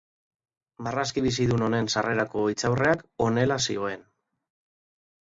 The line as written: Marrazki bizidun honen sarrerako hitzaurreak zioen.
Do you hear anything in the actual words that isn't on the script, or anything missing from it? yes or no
yes